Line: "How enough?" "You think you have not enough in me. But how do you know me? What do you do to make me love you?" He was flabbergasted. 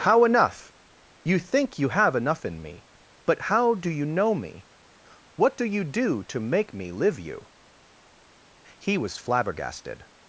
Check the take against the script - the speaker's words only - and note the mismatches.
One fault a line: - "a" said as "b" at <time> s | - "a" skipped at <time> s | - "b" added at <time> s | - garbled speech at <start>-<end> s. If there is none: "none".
- "not" skipped at 2.1 s
- "love" said as "live" at 6.9 s